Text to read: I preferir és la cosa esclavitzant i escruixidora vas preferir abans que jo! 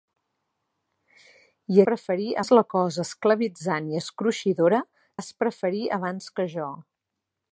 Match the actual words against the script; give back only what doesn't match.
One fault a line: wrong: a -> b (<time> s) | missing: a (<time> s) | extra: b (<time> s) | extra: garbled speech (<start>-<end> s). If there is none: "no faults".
no faults